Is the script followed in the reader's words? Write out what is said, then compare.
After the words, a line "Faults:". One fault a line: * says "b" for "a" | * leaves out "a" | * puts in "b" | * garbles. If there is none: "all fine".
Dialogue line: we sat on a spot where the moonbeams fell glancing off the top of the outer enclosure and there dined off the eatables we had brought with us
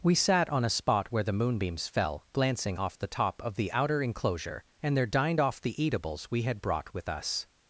we sat on a spot where the moonbeams fell glancing off the top of the outer enclosure and there dined off the eatables we had brought with us
Faults:
all fine